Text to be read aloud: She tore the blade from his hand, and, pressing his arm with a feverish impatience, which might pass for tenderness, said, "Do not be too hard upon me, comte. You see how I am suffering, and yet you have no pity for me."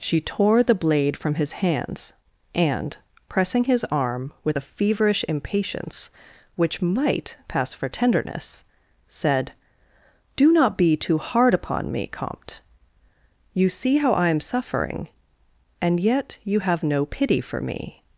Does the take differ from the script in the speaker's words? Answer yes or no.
yes